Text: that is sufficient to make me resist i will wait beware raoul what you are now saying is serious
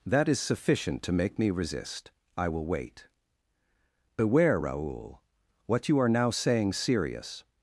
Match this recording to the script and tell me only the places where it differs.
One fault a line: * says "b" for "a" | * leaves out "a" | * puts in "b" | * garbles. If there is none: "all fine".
* leaves out "is"